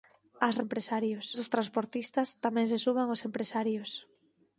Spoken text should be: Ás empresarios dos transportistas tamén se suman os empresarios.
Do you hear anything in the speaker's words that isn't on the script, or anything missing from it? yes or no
no